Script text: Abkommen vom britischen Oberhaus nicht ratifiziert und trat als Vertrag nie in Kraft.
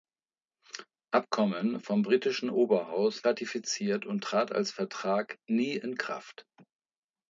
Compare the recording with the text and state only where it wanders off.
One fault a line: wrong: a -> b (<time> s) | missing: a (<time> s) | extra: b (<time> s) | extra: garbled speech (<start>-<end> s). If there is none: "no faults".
missing: nicht (3.2 s)